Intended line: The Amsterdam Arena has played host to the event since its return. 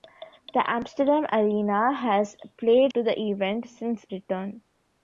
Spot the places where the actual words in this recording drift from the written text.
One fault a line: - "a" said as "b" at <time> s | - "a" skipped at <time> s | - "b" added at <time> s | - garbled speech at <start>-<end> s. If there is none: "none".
- "host" skipped at 2.9 s
- "its" skipped at 4.0 s